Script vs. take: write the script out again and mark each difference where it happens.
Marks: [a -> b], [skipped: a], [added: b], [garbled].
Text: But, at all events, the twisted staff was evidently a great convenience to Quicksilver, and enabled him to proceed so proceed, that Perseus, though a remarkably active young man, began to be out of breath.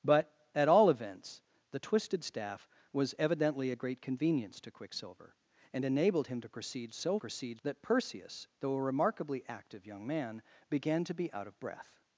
But, at all events, the twisted staff was evidently a great convenience to Quicksilver, and enabled him to proceed so proceed, that Perseus, though a remarkably active young man, began to be out of breath.